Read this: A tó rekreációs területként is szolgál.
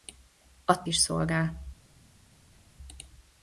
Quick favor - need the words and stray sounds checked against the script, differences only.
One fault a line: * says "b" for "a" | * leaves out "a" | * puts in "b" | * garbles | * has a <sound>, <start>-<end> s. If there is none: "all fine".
* leaves out "tó rekreációs területként"